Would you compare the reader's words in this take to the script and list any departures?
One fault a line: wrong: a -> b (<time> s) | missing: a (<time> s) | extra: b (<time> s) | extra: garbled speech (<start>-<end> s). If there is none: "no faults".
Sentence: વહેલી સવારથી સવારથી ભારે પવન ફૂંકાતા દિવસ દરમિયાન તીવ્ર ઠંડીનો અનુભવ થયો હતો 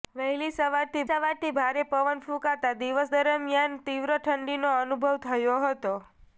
no faults